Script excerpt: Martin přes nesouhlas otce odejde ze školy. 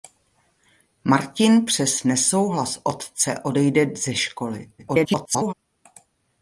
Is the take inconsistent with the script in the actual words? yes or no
yes